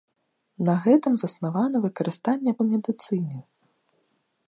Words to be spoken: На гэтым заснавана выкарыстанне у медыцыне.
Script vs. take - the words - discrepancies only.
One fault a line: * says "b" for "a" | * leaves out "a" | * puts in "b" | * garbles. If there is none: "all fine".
all fine